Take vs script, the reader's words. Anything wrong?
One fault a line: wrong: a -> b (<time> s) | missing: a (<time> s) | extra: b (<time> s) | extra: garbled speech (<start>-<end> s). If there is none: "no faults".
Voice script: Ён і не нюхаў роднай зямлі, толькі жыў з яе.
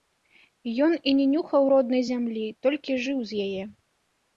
no faults